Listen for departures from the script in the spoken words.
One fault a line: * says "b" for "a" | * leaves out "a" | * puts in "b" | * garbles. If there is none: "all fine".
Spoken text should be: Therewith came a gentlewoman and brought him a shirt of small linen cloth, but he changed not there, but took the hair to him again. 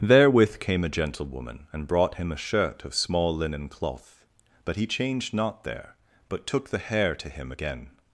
all fine